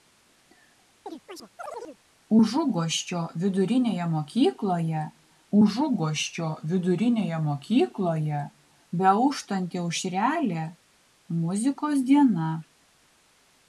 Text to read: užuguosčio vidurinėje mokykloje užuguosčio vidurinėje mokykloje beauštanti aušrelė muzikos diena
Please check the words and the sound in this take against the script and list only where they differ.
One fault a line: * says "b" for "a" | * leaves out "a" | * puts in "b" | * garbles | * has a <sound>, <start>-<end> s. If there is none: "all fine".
* has a chirp, 1.1-2.0 s